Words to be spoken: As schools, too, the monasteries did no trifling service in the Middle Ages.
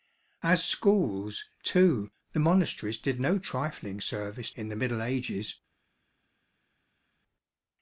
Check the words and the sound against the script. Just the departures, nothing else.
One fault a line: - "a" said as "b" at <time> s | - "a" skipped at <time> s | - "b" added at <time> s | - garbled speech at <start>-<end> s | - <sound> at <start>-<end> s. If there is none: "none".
none